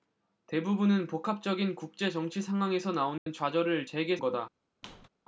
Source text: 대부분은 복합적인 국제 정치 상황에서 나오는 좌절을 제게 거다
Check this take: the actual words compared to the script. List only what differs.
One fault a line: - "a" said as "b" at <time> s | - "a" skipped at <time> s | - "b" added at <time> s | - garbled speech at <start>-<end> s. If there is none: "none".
none